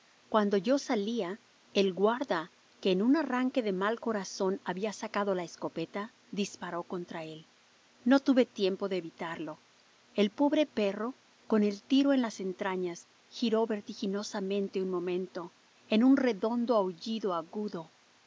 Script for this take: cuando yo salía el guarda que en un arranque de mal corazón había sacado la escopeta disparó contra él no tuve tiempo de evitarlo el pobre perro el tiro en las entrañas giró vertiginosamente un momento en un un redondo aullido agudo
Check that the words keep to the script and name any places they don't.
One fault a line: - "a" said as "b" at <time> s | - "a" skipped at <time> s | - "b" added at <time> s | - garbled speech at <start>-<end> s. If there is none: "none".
- "con" added at 11.5 s
- "un" skipped at 16.2 s